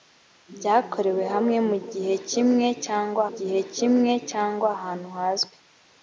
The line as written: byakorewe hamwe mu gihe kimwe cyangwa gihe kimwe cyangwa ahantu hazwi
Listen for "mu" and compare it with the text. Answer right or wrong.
right